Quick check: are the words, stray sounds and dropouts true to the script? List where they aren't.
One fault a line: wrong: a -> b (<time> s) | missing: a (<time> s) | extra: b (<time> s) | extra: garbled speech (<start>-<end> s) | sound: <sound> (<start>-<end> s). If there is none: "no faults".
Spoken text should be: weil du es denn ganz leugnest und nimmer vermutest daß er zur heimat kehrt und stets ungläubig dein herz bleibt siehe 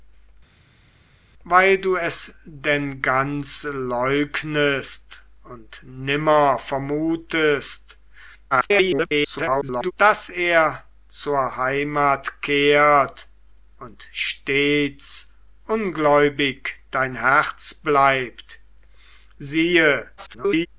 extra: garbled speech (8.5-9.9 s)
extra: garbled speech (20.2-20.7 s)